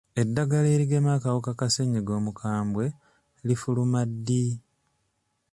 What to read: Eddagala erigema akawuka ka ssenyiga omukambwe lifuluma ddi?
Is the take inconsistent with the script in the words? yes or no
no